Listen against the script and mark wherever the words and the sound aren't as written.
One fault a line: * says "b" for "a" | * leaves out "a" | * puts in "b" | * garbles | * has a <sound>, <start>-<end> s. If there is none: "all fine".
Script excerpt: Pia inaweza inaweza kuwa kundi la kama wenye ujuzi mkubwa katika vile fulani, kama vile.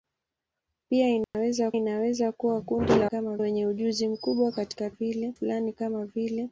* has a dropout, 1.2-1.3 s